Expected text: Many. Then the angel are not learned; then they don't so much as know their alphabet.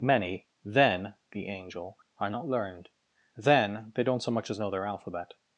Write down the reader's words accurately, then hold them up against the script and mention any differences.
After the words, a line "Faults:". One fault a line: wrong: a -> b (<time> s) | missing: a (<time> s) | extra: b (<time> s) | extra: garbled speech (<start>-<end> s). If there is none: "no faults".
Many. Then the angel are not learned; then they don't so much as know their alphabet.
Faults:
no faults